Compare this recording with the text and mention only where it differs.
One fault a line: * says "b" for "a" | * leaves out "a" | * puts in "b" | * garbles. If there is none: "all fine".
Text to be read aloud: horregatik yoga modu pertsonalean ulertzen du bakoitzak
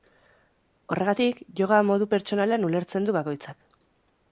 all fine